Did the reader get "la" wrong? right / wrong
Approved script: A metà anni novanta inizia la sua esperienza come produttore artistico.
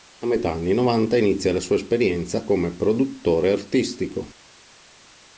right